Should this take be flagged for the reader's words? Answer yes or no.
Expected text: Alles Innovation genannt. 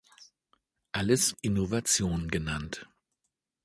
no